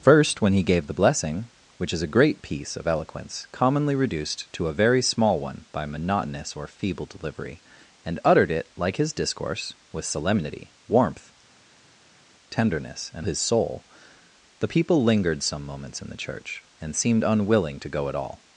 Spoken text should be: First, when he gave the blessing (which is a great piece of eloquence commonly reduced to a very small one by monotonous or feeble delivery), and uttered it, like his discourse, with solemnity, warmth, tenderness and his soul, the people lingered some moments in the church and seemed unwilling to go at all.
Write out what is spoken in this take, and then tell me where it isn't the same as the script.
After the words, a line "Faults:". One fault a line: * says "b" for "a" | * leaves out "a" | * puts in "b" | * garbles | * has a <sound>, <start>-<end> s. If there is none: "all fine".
First, when he gave the blessing (which is a great piece of eloquence commonly reduced to a very small one by monotonous or feeble delivery), and uttered it, like his discourse, with solemnity, warmth, tenderness and his soul, the people lingered some moments in the church and seemed unwilling to go at all.
Faults:
all fine